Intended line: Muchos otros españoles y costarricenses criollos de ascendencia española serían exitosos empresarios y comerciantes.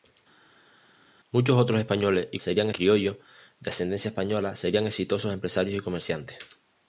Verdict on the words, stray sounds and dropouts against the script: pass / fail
fail